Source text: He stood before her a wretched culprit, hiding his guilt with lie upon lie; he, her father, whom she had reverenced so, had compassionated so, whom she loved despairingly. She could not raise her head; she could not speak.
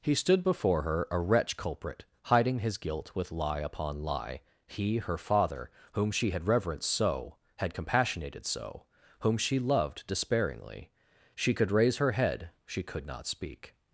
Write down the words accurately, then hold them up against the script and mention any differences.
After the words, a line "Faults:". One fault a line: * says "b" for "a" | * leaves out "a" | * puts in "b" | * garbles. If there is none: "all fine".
He stood before her a wretch culprit, hiding his guilt with lie upon lie; he, her father, whom she had reverenced so, had compassionated so, whom she loved despairingly. She could raise her head; she could not speak.
Faults:
* says "wretch" for "wretched"
* leaves out "not"